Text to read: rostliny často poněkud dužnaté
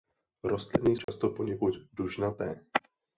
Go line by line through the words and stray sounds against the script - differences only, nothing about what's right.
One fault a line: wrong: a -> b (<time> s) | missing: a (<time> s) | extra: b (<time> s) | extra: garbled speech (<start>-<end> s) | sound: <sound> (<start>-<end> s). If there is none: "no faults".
sound: dropout (1.0-1.1 s)